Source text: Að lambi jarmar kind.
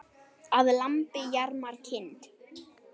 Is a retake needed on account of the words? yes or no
no